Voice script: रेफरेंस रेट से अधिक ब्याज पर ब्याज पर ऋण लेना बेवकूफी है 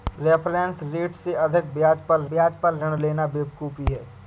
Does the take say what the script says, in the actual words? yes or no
yes